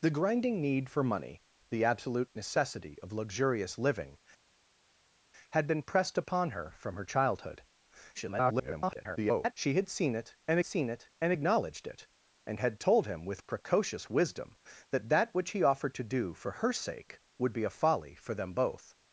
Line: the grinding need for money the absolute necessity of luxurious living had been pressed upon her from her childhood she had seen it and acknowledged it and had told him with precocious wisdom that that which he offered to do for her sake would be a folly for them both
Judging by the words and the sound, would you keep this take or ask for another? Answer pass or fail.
fail